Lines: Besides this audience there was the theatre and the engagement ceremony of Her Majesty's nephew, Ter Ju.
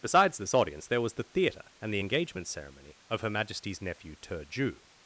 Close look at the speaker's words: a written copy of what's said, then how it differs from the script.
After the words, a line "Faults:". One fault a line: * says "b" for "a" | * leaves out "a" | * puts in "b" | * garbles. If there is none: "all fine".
Besides this audience there was the theatre and the engagement ceremony of Her Majesty's nephew, Ter Ju.
Faults:
all fine